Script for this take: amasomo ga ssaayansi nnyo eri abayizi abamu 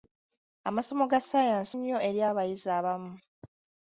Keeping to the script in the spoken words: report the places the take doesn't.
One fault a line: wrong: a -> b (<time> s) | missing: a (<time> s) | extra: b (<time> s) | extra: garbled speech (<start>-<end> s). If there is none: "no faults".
no faults